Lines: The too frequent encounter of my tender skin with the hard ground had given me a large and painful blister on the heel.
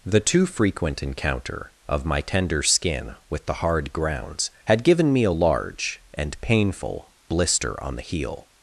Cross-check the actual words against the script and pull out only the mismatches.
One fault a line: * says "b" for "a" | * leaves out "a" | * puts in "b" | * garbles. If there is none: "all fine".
* says "grounds" for "ground"